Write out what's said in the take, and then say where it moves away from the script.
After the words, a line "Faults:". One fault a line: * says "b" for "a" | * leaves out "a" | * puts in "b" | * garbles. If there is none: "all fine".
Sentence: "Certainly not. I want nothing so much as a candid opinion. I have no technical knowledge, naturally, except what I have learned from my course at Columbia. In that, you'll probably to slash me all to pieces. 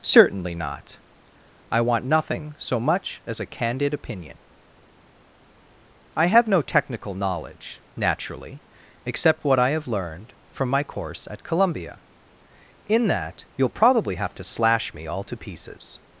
"Certainly not. I want nothing so much as a candid opinion. I have no technical knowledge, naturally, except what I have learned from my course at Columbia. In that, you'll probably have to slash me all to pieces.
Faults:
* puts in "have"